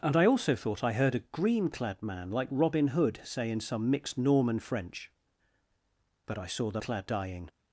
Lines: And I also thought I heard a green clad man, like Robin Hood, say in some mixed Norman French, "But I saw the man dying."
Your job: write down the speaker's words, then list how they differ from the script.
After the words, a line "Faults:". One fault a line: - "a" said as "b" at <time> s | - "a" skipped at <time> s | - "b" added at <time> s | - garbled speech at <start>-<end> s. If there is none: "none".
And I also thought I heard a green clad man, like Robin Hood, say in some mixed Norman French, "But I saw the clad dying."
Faults:
- "man" said as "clad" at 6.8 s